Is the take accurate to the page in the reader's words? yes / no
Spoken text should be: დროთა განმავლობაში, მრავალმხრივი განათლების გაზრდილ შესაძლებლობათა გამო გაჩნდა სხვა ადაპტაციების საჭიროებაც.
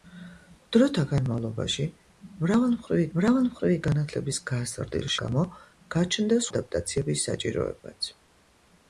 no